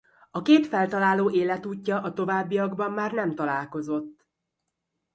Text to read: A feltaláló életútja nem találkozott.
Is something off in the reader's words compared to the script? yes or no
yes